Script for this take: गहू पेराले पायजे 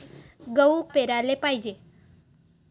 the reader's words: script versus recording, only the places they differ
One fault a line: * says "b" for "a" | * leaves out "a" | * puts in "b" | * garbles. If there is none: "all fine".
all fine